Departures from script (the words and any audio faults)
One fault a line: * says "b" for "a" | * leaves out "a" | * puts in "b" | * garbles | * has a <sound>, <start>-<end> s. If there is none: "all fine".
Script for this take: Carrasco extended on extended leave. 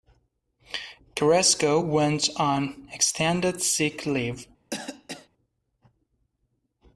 * says "went" for "extended"
* puts in "sick"
* has a cough, 4.7-5.3 s